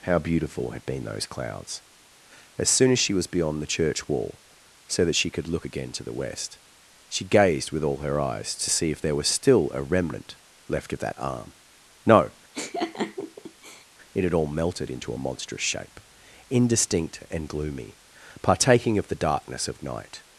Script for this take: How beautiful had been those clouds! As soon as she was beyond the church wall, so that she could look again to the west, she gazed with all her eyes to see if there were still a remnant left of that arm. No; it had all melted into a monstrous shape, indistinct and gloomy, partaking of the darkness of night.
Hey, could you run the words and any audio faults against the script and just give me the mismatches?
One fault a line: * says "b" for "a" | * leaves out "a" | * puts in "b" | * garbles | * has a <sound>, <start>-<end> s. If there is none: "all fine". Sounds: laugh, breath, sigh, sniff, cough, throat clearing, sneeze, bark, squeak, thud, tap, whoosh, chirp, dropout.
* says "was" for "were"
* has a laugh, 12.5-13.9 s